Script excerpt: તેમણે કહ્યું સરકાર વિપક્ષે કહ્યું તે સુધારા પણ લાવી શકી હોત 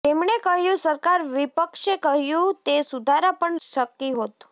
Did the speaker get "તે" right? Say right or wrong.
right